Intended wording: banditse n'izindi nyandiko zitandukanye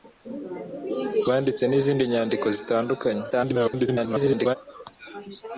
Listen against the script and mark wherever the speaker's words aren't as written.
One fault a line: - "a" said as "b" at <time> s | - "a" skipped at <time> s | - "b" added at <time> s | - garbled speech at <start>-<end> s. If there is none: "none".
- garbled speech at 3.3-4.6 s